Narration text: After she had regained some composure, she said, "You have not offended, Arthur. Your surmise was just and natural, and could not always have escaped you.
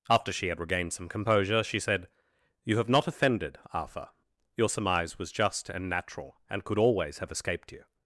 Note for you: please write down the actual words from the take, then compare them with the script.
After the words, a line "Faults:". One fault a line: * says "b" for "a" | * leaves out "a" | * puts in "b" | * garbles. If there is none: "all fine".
After she had regained some composure, she said, "You have not offended, Arthur. Your surmise was just and natural, and could always have escaped you.
Faults:
* leaves out "not"